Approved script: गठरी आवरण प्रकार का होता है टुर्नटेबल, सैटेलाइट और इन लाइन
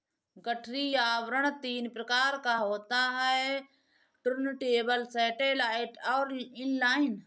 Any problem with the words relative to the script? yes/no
yes